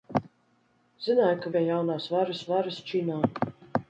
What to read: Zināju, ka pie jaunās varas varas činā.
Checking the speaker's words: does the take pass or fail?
pass